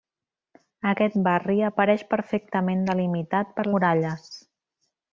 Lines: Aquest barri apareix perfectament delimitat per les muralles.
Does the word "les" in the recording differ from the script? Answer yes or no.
yes